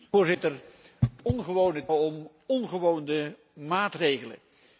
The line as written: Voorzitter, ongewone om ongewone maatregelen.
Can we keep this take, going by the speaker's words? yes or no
yes